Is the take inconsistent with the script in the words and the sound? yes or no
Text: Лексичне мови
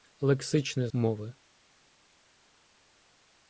no